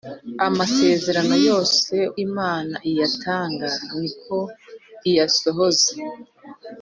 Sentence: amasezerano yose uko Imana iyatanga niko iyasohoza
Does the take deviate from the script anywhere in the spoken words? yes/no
yes